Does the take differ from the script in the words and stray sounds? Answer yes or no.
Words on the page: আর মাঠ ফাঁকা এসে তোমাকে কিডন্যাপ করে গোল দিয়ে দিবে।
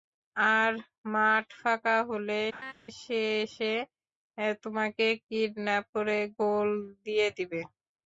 yes